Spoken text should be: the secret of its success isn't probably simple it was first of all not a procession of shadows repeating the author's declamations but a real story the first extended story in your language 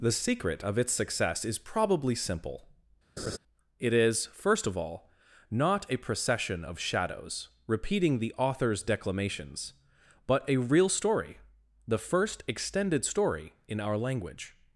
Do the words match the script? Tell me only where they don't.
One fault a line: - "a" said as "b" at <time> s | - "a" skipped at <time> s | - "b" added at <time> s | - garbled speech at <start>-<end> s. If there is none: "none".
- "isn't" said as "is" at 1.4 s
- "was" said as "is" at 3.9 s
- "your" said as "our" at 13.8 s